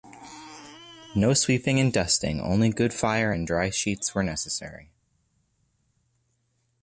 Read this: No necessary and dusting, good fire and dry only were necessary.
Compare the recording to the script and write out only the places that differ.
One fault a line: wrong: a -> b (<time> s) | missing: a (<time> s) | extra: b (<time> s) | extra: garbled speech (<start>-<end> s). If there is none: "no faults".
wrong: necessary -> sweeping (1.4 s)
extra: only (2.4 s)
wrong: only -> sheets (3.7 s)